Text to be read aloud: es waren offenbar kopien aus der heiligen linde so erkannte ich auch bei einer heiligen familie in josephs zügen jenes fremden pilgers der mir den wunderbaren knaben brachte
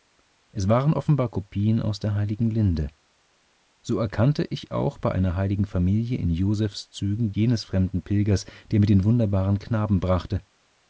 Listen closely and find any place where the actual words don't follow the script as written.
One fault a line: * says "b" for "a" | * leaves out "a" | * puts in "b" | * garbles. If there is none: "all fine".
all fine